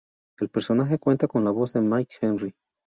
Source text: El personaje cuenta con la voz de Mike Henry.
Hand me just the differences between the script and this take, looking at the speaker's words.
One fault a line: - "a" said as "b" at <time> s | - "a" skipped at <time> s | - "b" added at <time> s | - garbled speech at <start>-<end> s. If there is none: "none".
none